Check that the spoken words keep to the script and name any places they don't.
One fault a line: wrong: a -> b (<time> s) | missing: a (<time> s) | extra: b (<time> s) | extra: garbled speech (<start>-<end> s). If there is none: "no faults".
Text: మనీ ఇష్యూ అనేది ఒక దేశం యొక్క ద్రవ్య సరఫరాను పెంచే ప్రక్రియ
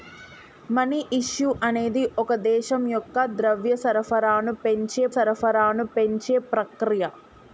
extra: సరఫరాను పెంచే (5.1 s)